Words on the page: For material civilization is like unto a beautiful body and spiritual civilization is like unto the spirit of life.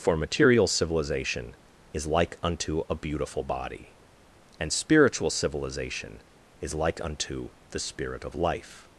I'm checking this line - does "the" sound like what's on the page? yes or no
yes